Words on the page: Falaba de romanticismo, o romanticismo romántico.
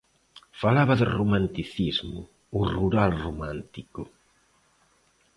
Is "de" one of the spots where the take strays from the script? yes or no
no